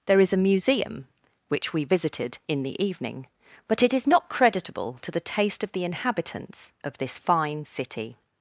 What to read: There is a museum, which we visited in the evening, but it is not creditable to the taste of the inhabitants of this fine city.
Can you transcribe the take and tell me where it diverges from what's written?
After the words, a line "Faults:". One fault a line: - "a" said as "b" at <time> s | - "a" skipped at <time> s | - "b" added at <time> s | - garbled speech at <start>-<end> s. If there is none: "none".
There is a museum, which we visited in the evening, but it is not creditable to the taste of the inhabitants of this fine city.
Faults:
none